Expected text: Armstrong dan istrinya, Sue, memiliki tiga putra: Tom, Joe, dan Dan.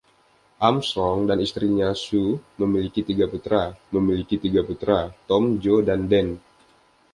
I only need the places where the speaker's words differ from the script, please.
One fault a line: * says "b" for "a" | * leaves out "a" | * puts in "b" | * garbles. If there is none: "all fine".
* puts in "memiliki tiga putra"